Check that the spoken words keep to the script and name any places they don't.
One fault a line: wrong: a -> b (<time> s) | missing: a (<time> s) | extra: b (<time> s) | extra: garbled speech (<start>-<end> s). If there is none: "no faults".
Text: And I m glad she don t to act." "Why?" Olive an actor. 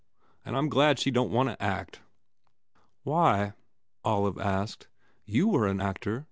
extra: want (1.4 s)
extra: asked You were (4.4 s)